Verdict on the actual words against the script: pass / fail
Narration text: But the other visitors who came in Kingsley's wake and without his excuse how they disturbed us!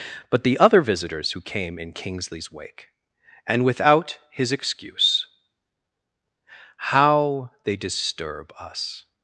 fail